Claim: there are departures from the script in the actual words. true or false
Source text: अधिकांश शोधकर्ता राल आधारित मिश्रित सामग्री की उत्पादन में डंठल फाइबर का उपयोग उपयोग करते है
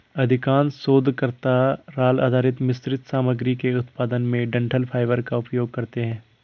true